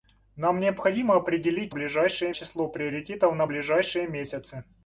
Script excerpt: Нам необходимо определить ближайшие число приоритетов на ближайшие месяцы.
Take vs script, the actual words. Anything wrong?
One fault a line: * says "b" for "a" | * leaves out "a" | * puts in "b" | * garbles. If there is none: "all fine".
all fine